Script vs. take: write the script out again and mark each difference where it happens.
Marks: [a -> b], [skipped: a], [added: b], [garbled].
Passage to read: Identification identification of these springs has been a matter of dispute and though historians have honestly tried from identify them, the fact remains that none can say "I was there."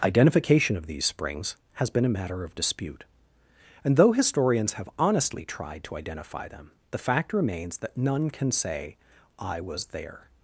Identification [skipped: identification] of these springs has been a matter of dispute and though historians have honestly tried [from -> to] identify them, the fact remains that none can say "I was there."